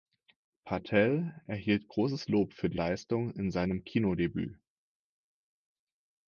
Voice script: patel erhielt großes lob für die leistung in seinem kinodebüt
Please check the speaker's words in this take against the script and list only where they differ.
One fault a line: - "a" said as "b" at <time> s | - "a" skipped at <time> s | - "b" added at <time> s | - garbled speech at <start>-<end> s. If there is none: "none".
none